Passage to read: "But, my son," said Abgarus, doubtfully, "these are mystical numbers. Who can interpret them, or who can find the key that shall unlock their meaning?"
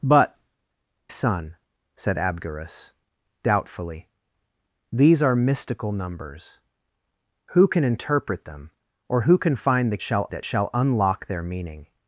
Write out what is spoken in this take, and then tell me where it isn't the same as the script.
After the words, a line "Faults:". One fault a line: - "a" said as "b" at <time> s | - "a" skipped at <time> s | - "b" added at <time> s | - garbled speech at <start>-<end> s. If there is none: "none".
"But, son," said Abgarus, doubtfully, "these are mystical numbers. Who can interpret them, or who can find the shall that shall unlock their meaning?"
Faults:
- "my" skipped at 0.4 s
- "key" said as "shall" at 10.0 s